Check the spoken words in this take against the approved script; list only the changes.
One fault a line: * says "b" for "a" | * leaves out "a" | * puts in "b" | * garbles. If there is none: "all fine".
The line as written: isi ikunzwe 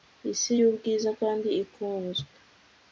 * puts in "yubwiza kandi"